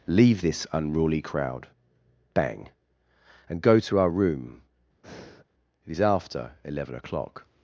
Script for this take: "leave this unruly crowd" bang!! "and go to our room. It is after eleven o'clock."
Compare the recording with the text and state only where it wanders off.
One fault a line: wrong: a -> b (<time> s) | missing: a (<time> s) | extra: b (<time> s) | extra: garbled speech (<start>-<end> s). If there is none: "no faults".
no faults